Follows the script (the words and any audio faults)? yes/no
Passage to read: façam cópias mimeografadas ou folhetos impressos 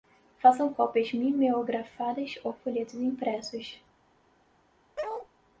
no